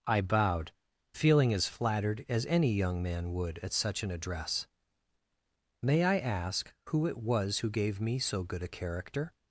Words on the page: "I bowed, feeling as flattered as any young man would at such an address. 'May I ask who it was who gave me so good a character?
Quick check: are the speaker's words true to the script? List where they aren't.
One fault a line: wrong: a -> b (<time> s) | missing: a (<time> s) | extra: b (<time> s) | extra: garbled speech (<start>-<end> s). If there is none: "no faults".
no faults